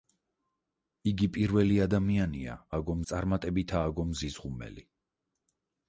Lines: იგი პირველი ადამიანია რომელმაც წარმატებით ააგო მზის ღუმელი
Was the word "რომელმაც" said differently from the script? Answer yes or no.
yes